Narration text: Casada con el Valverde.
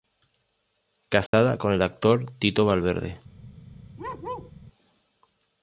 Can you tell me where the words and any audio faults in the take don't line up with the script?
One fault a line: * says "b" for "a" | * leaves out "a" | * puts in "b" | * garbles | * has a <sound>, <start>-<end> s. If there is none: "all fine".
* has a dropout, 1.3-1.3 s
* puts in "actor Tito"
* has a bark, 4.0-4.5 s